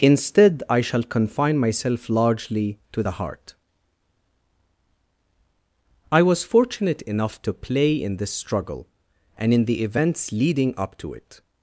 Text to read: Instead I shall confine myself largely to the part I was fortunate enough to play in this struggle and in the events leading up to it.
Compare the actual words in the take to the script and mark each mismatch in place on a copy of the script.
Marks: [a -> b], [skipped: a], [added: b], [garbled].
Instead I shall confine myself largely to the [part -> heart] I was fortunate enough to play in this struggle and in the events leading up to it.